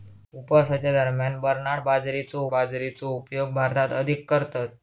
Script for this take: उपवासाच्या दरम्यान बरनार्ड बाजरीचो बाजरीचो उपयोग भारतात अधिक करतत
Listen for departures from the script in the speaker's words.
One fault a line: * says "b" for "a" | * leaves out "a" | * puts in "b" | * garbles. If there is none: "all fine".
all fine